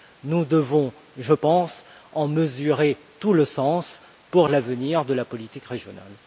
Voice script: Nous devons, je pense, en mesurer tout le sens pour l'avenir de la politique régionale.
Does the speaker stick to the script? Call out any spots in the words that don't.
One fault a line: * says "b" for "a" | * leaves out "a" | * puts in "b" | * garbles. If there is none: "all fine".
all fine